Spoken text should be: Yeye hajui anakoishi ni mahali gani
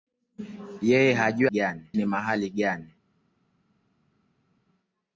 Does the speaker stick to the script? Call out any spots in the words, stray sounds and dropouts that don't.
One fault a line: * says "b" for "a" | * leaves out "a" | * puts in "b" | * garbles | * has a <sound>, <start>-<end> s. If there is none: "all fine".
* says "gani" for "anakoishi"